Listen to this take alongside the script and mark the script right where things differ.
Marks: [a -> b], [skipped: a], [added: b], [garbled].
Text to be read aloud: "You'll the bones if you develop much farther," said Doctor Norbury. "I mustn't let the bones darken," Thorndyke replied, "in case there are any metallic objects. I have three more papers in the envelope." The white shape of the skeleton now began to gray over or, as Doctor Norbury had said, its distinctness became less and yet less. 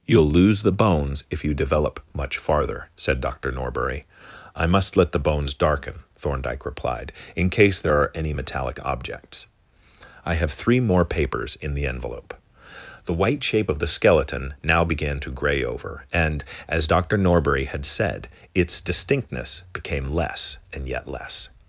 "You'll [added: lose] the bones if you develop much farther," said Doctor Norbury. "I [mustn't -> must] let the bones darken," Thorndyke replied, "in case there are any metallic objects. I have three more papers in the envelope." The white shape of the skeleton now began to gray over [or, -> and] as Doctor Norbury had said, its distinctness became less and yet less.